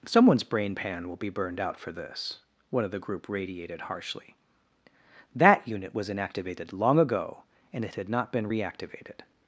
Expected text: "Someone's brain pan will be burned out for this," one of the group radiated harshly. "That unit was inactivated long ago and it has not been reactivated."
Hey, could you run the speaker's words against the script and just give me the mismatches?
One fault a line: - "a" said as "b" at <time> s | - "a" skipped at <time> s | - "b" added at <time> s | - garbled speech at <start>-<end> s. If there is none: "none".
- "has" said as "had" at 8.0 s